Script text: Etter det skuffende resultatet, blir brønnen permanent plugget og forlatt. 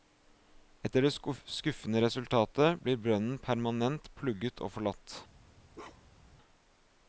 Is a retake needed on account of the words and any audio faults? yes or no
yes